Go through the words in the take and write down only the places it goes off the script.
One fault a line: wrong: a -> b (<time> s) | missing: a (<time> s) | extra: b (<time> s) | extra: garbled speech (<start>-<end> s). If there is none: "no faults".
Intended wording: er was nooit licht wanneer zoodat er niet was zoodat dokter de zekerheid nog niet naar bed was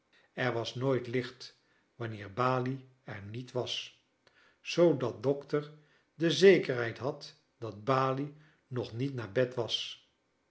wrong: zoodat -> balie (2.3 s)
extra: had dat balie (7.0 s)